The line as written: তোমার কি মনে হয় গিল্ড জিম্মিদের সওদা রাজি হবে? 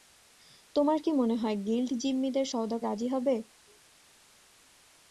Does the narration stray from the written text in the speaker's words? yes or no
no